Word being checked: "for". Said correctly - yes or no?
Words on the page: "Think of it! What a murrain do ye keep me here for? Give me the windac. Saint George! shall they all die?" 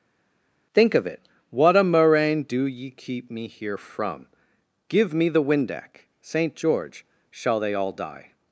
no